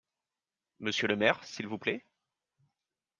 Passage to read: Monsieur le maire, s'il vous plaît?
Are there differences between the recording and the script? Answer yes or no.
no